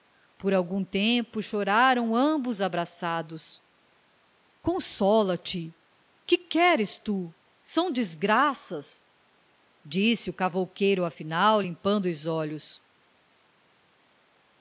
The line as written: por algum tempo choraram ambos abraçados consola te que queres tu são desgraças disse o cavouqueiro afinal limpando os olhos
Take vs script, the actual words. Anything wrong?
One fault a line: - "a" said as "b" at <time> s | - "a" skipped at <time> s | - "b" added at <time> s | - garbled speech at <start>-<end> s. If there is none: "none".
none